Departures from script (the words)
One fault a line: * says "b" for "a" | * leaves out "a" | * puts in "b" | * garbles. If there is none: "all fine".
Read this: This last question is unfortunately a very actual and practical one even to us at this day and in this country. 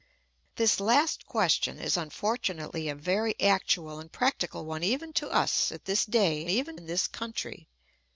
* says "even" for "and"